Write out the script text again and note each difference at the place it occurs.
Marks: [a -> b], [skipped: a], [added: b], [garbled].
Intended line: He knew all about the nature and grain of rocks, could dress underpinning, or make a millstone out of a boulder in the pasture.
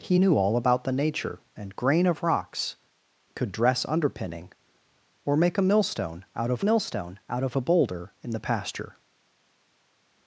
He knew all about the nature and grain of rocks, could dress underpinning, or make a millstone out of [added: millstone out of] a boulder in the pasture.